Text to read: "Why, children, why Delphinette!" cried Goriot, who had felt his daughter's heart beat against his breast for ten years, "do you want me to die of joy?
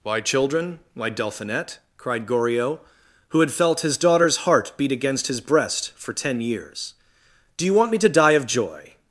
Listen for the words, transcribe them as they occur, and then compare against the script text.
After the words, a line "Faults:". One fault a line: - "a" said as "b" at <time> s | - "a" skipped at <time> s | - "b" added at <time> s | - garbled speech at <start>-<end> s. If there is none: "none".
"Why, children, why Delphinette!" cried Goriot, who had felt his daughter's heart beat against his breast for ten years, "do you want me to die of joy?
Faults:
none